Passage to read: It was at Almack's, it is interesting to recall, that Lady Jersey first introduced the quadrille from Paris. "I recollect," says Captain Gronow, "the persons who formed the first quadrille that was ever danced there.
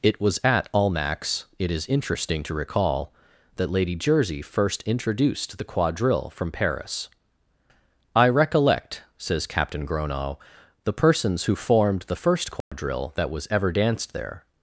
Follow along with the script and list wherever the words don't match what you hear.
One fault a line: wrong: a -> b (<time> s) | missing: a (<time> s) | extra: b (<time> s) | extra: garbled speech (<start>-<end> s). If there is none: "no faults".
no faults